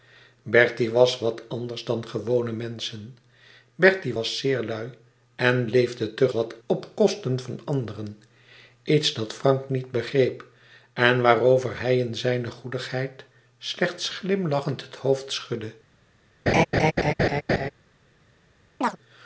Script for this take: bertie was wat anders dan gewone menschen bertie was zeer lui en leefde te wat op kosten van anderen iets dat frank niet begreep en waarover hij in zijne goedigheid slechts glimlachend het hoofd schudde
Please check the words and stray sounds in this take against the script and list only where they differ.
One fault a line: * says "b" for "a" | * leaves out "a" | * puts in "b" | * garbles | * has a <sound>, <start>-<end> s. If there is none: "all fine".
* has a laugh, 16.5-17.7 s
* has a chirp, 18.8-19.0 s